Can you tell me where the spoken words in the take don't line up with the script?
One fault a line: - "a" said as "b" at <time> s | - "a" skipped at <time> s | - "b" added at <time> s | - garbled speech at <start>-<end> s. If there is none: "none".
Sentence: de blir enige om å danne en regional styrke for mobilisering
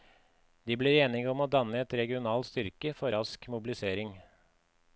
- "rask" added at 3.1 s